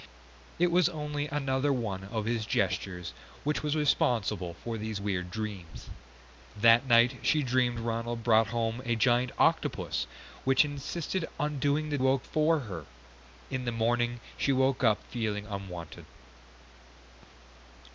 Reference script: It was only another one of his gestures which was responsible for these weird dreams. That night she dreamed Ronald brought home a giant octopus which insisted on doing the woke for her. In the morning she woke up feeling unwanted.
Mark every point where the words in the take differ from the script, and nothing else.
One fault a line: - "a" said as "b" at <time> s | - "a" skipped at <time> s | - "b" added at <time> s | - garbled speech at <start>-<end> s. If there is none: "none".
none